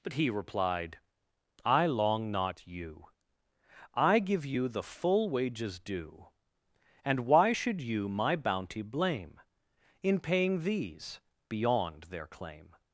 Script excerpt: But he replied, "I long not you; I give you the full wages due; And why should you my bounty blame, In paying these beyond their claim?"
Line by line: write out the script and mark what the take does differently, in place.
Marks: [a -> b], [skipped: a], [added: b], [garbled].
But he replied, "I long not you; I give you the full wages due; And why should you my bounty blame, In paying these beyond their claim?"